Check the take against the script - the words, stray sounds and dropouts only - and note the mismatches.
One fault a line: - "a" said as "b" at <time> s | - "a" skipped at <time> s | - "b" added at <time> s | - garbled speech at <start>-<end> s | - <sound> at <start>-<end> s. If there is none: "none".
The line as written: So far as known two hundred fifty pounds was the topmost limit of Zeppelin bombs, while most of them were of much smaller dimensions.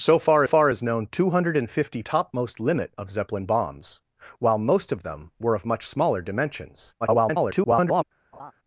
- "far" added at 0.4 s
- "pounds was the" skipped at 2.0 s
- garbled speech at 7.0-8.0 s
- laugh at 8.3-8.5 s